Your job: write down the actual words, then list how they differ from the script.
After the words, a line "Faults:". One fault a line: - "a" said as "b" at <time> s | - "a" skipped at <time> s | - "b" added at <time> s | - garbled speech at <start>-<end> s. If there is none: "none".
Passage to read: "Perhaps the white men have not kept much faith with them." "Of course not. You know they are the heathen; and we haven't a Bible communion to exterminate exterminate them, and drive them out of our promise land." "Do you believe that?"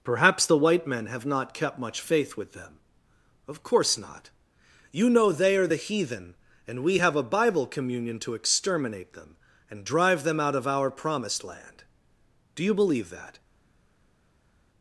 "Perhaps the white men have not kept much faith with them." "Of course not. You know they are the heathen; and we have a Bible communion to exterminate them, and drive them out of our promised land." "Do you believe that?"
Faults:
- "haven't" said as "have" at 7.0 s
- "exterminate" skipped at 9.1 s
- "promise" said as "promised" at 10.9 s